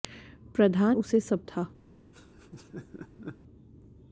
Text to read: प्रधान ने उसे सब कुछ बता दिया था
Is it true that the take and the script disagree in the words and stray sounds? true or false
true